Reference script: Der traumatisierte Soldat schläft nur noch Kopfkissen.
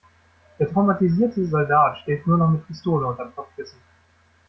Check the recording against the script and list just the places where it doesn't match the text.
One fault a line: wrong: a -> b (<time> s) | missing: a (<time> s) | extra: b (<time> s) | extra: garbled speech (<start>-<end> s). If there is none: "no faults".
extra: mit Pistole unterm (2.5 s)